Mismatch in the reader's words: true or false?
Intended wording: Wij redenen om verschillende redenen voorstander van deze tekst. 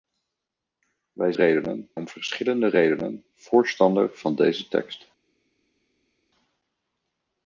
false